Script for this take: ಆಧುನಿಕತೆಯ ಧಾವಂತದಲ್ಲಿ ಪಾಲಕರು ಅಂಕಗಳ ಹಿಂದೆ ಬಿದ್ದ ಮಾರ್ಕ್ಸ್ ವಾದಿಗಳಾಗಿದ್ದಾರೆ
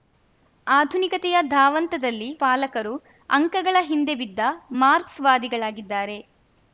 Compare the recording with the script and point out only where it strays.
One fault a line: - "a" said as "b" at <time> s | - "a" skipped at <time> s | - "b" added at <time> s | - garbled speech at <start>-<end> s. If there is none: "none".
none